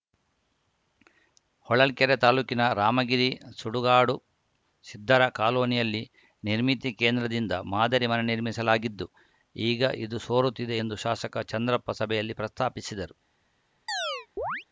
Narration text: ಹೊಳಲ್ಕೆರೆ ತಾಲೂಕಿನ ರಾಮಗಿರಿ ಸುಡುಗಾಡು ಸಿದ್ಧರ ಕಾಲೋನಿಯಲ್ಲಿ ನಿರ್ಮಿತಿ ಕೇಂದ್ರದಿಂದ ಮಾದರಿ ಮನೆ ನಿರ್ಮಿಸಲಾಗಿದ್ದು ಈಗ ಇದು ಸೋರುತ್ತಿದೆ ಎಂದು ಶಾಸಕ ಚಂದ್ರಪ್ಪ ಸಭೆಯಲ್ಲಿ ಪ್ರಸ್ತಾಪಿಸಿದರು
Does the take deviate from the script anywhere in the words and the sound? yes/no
yes